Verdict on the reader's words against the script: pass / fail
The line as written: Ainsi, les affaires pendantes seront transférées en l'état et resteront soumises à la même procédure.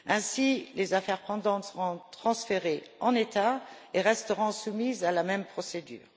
pass